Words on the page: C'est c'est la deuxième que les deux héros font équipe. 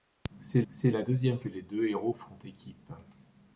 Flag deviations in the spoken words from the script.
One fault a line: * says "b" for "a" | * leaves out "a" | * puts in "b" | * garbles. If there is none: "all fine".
all fine